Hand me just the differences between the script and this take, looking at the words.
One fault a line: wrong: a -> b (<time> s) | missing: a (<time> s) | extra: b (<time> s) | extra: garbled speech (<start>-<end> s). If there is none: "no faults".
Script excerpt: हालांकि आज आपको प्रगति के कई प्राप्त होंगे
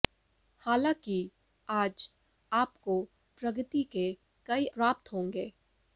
no faults